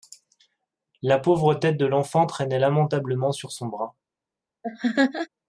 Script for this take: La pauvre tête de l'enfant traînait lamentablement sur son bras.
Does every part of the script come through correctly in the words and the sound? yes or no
no